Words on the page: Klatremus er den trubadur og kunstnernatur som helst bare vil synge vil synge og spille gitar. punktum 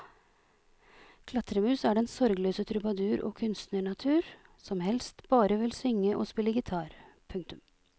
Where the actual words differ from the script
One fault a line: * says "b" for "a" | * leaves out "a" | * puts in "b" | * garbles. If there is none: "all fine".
* puts in "sorgløse"
* leaves out "vil synge"